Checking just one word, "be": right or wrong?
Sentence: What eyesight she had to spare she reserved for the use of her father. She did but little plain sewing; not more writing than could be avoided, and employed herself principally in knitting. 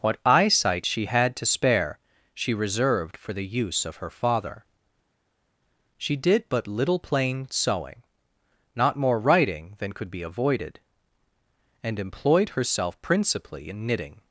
right